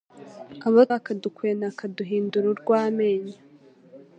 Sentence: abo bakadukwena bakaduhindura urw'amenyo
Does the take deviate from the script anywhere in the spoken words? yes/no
no